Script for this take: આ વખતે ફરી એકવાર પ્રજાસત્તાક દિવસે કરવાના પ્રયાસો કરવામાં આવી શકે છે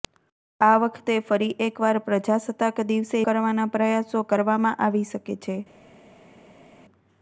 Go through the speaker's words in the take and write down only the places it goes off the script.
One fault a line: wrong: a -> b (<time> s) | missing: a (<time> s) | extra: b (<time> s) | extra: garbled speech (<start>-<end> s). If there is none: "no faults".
no faults